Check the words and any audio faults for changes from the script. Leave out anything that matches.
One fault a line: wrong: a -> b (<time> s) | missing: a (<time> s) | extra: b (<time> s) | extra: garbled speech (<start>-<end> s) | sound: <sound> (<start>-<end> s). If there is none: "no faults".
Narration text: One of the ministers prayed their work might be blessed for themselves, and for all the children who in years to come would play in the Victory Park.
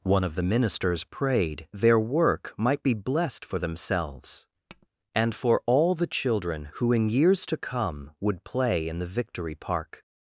sound: tap (4.7-4.9 s)